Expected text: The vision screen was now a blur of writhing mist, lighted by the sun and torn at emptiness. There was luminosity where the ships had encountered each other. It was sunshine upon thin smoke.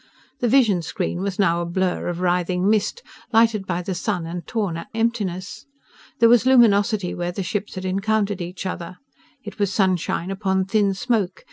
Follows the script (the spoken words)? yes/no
yes